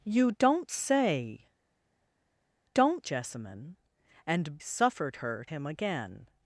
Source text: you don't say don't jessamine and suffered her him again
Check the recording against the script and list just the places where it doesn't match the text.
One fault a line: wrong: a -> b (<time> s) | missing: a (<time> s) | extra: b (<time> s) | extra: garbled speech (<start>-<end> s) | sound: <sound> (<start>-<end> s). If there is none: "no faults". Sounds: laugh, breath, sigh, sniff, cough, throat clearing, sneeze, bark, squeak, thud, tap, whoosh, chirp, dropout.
no faults